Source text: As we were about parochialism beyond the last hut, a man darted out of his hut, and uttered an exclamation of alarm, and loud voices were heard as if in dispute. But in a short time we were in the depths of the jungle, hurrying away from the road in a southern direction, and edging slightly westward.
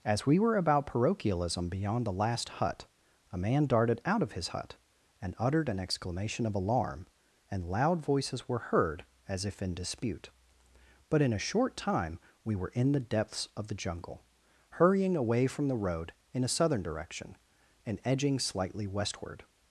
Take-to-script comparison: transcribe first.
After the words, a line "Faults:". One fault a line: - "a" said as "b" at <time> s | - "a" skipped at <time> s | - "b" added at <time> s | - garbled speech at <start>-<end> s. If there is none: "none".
As we were about parochialism beyond the last hut, a man darted out of his hut, and uttered an exclamation of alarm, and loud voices were heard as if in dispute. But in a short time we were in the depths of the jungle, hurrying away from the road in a southern direction, and edging slightly westward.
Faults:
none